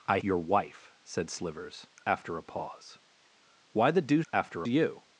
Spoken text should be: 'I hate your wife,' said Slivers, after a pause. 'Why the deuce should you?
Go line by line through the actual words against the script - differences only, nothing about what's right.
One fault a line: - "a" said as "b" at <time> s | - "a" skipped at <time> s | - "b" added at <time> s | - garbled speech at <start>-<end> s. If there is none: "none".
- "hate" skipped at 0.2 s
- "should" said as "after" at 4.3 s